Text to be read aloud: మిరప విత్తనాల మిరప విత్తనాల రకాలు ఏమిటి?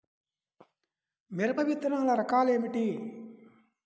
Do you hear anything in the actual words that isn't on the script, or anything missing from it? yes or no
yes